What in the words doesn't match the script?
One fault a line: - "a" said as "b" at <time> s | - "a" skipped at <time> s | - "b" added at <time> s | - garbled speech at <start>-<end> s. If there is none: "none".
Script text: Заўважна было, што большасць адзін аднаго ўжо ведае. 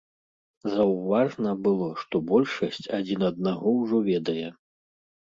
none